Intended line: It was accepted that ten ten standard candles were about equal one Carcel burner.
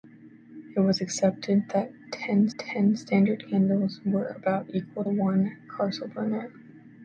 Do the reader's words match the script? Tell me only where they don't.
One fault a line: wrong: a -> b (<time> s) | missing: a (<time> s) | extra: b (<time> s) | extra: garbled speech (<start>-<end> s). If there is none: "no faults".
no faults